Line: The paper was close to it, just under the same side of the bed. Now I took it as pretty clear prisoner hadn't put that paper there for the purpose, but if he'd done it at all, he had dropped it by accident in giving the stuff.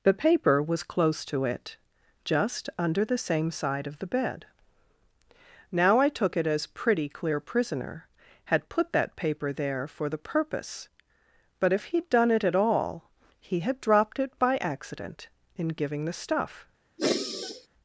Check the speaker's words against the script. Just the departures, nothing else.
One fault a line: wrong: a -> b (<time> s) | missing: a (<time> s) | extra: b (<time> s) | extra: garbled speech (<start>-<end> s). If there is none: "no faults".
wrong: hadn't -> had (8.4 s)